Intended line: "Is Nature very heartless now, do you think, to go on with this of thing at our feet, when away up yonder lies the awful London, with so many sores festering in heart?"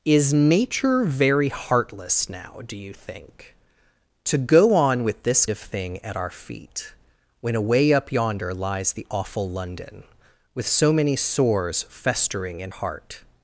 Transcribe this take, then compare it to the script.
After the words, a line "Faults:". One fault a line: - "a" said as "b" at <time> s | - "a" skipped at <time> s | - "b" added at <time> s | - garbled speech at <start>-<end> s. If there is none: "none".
"Is Nature very heartless now, do you think, to go on with this of thing at our feet, when away up yonder lies the awful London, with so many sores festering in heart?"
Faults:
none